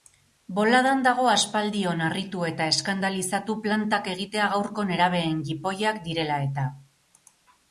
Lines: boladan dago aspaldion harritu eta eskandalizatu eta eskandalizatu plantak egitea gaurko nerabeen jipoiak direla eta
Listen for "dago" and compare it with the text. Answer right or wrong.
right